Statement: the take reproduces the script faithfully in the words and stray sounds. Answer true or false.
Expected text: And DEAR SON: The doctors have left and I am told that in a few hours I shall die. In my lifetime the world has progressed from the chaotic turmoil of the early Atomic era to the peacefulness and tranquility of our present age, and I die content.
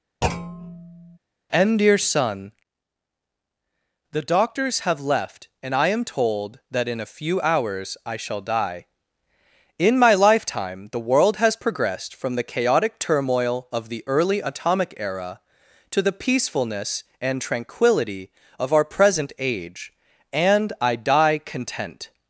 false